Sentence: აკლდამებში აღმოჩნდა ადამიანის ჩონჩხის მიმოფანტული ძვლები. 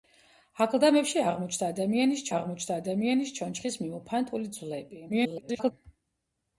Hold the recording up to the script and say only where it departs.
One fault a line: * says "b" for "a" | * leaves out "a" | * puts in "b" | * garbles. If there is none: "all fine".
* puts in "აღმოჩნდა ადამიანის"
* garbles